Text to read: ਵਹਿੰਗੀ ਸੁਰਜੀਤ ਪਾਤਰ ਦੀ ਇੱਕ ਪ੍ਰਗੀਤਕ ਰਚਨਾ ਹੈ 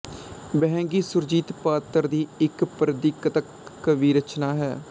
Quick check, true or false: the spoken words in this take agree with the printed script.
false